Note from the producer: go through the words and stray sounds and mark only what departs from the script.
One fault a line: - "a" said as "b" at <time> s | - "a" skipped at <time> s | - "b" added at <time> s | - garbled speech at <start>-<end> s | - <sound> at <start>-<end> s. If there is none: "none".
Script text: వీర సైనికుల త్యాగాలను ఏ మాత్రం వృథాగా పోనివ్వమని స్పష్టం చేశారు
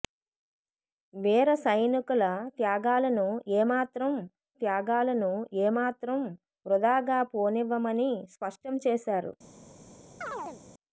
- "త్యాగాలను ఏ మాత్రం" added at 4.6 s
- chirp at 10.2-10.6 s